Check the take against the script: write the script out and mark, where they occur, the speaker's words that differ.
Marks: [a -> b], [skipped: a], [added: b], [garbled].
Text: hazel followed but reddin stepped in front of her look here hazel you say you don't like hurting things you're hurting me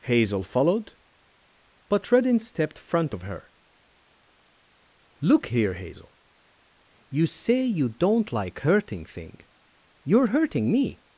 hazel followed but reddin stepped [skipped: in] front of her look here hazel you say you don't like hurting [things -> thing] you're hurting me